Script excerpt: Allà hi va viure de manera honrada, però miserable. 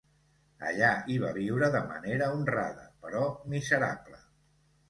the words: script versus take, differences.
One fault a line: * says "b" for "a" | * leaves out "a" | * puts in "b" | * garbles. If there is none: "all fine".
all fine